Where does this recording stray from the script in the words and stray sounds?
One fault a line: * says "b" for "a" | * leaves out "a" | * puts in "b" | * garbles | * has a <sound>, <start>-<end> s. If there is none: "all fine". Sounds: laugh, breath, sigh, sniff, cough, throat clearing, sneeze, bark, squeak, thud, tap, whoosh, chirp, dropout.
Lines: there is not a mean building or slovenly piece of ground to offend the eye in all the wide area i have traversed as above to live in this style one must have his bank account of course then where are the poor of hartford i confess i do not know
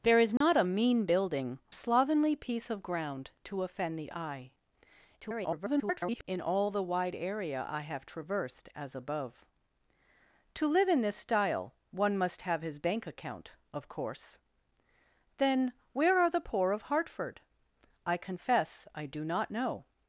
* has a dropout, 0.4-0.4 s
* leaves out "or"
* garbles